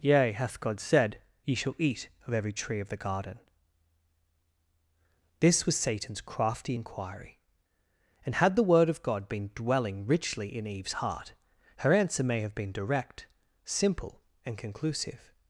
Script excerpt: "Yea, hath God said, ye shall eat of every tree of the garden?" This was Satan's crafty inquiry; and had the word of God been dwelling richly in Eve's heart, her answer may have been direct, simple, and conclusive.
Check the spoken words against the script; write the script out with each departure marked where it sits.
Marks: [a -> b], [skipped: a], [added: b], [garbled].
"Yea, hath God said, ye shall eat of every tree of the garden?" This was Satan's crafty inquiry; and had the word of God been dwelling richly in Eve's heart, her answer may have been direct, simple, and conclusive.